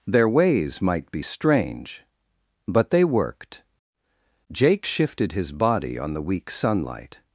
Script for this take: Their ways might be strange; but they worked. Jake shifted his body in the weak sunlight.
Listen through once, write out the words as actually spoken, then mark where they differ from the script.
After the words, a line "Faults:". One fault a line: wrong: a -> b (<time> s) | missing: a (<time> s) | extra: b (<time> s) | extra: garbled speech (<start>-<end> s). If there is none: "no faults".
Their ways might be strange; but they worked. Jake shifted his body on the weak sunlight.
Faults:
wrong: in -> on (6.0 s)